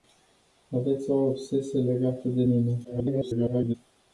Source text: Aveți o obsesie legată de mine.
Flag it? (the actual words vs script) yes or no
yes